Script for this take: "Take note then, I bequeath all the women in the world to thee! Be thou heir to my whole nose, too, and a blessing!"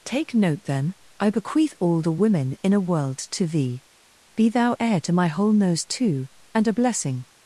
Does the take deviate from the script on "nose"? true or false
false